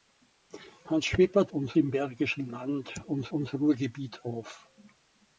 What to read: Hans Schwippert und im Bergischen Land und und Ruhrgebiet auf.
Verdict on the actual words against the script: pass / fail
pass